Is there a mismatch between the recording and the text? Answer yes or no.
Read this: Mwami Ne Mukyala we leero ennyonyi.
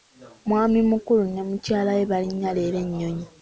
yes